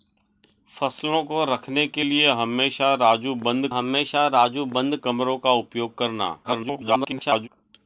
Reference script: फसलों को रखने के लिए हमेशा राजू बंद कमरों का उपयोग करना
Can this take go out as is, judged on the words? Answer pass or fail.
fail